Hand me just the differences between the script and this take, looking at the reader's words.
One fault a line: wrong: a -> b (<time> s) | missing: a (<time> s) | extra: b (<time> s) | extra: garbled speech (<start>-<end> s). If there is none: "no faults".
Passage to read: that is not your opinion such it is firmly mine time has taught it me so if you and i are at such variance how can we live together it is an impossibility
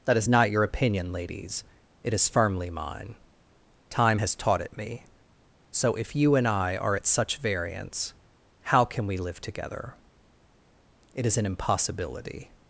wrong: such -> ladies (1.1 s)